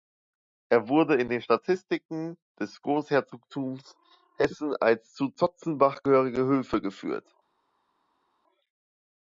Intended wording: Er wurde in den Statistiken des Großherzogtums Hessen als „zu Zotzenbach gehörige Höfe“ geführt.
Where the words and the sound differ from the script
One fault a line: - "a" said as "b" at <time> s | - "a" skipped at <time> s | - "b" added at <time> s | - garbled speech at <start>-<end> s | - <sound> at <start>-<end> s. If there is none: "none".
none